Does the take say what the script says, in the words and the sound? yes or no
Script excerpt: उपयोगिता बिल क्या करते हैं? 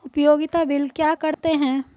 no